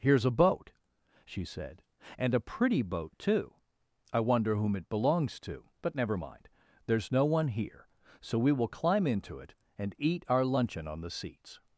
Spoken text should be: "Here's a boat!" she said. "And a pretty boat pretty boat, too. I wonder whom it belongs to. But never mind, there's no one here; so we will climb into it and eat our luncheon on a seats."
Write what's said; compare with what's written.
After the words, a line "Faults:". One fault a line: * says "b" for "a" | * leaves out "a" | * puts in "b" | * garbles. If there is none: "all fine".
"Here's a boat!" she said. "And a pretty boat, too. I wonder whom it belongs to. But never mind, there's no one here; so we will climb into it and eat our luncheon on the seats."
Faults:
* leaves out "pretty boat"
* says "the" for "a"